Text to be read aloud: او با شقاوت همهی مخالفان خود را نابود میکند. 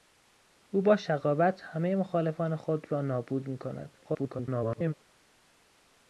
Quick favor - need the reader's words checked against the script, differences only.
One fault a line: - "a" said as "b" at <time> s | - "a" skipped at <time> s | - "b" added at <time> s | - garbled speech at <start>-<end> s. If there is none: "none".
- garbled speech at 4.0-4.9 s